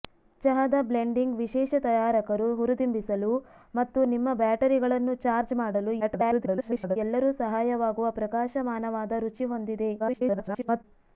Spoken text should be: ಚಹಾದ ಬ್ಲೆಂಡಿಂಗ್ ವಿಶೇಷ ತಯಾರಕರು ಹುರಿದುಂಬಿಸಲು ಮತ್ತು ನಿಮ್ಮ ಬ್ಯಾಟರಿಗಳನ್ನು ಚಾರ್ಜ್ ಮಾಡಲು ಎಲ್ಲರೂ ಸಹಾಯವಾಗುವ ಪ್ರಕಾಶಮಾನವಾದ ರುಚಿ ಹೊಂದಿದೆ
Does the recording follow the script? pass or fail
fail